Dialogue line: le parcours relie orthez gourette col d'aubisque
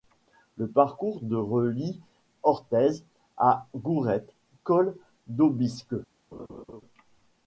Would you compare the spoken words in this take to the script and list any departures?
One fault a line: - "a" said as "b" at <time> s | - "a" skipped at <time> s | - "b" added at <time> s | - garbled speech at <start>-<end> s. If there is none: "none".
- "de" added at 1.2 s
- "à" added at 3.4 s